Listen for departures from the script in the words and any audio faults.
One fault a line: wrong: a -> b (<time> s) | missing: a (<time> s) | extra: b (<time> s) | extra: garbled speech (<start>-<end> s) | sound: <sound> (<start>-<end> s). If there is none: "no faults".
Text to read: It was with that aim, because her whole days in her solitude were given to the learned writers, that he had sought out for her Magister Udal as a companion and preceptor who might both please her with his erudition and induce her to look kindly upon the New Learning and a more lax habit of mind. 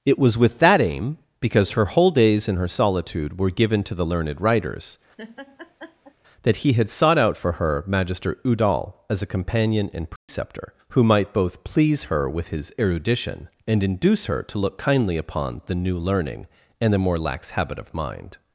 sound: laugh (5.2-6.1 s)
sound: dropout (10.2-10.3 s)
wrong: a -> the (16.9 s)